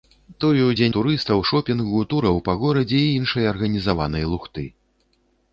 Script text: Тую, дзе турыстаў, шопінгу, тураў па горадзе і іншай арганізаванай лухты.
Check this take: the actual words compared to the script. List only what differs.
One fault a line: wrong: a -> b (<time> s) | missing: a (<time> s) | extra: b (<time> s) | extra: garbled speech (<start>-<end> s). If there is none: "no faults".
no faults